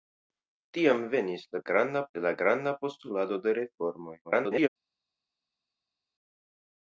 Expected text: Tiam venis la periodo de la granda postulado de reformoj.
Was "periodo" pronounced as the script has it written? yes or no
no